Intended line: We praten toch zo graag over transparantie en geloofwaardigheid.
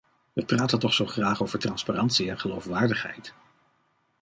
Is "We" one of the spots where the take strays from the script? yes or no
no